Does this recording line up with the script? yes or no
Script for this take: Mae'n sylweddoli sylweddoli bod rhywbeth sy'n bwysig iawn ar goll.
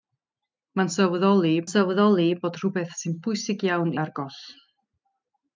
yes